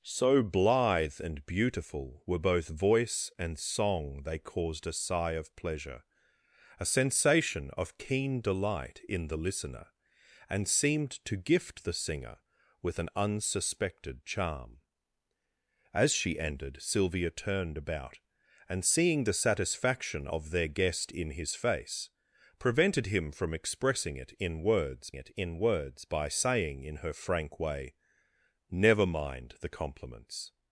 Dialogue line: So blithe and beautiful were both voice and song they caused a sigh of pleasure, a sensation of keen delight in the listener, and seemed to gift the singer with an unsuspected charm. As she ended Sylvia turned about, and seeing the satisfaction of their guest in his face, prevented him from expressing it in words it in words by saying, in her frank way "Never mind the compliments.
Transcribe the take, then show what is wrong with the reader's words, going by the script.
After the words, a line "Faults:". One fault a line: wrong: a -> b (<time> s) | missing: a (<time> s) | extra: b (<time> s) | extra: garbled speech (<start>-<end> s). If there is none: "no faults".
So blithe and beautiful were both voice and song they caused a sigh of pleasure, a sensation of keen delight in the listener, and seemed to gift the singer with an unsuspected charm. As she ended Sylvia turned about, and seeing the satisfaction of their guest in his face, prevented him from expressing it in words it in words by saying, in her frank way "Never mind the compliments.
Faults:
no faults